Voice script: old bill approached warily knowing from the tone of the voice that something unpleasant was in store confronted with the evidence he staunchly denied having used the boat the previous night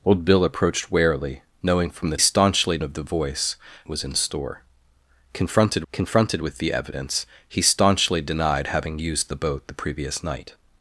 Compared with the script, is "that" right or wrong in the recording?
wrong